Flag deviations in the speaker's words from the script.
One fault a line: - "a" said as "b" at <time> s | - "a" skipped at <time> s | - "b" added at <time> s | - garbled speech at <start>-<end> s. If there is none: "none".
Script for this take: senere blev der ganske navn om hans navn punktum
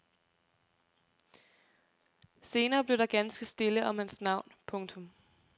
- "navn" said as "stille" at 3.5 s